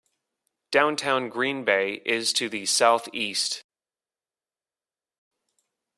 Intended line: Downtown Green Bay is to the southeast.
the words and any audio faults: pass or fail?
pass